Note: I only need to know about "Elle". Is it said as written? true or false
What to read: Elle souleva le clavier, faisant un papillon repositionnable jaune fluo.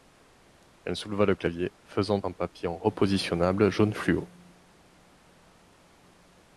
true